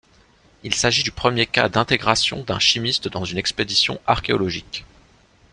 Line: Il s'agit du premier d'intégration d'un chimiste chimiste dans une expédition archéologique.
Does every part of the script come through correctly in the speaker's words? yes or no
no